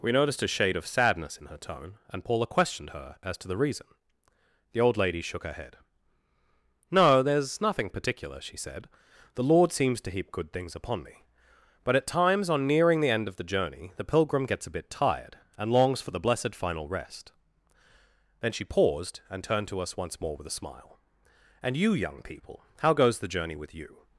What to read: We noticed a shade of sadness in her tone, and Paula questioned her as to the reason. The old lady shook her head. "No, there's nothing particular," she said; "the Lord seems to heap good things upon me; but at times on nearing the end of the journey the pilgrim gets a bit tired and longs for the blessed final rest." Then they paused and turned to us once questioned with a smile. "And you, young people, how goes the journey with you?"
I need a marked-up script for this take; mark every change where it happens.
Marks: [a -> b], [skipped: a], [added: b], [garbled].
We noticed a shade of sadness in her tone, and Paula questioned her as to the reason. The old lady shook her head. "No, there's nothing particular," she said; "the Lord seems to heap good things upon me; but at times on nearing the end of the journey the pilgrim gets a bit tired and longs for the blessed final rest." Then [they -> she] paused and turned to us once [questioned -> more] with a smile. "And you, young people, how goes the journey with you?"